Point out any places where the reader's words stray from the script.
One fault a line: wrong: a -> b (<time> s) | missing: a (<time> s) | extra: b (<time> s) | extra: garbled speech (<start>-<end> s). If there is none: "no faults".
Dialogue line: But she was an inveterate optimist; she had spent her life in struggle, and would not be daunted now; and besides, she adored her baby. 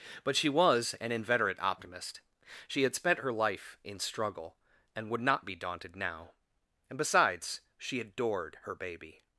no faults